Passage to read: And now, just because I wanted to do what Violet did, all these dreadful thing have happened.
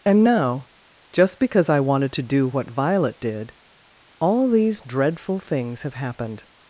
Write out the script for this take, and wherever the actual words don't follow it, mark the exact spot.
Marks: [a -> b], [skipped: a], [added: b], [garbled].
And now, just because I wanted to do what Violet did, all these dreadful [thing -> things] have happened.